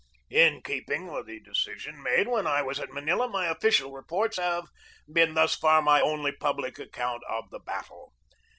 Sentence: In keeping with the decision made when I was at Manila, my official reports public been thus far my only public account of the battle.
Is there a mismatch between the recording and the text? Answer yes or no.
yes